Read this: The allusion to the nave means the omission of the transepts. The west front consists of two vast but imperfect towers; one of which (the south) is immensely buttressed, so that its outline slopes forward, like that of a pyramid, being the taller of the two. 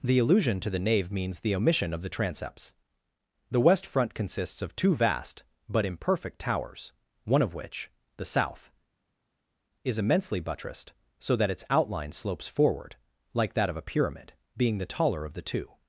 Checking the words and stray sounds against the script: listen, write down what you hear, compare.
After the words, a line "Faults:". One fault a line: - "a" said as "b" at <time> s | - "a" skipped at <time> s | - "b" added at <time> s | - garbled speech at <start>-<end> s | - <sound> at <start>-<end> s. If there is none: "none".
The allusion to the nave means the omission of the transepts. The west front consists of two vast but imperfect towers; one of which (the south) is immensely buttressed, so that its outline slopes forward, like that of a pyramid, being the taller of the two.
Faults:
none